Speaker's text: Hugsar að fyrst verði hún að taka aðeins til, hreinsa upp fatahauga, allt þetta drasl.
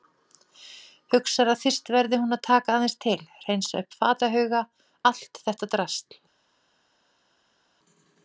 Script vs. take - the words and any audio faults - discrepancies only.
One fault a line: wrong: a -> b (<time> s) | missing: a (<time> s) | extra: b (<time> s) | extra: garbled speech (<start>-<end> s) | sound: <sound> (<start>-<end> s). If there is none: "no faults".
no faults